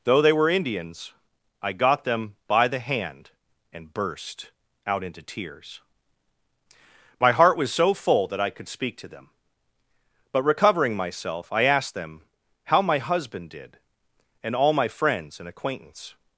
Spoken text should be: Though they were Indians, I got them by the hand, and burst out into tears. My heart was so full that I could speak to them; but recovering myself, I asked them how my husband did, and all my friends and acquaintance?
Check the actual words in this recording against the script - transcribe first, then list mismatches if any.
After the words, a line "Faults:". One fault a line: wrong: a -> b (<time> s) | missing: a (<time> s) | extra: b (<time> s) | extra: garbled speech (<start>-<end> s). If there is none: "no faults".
Though they were Indians, I got them by the hand, and burst out into tears. My heart was so full that I could speak to them; but recovering myself, I asked them how my husband did, and all my friends and acquaintance?
Faults:
no faults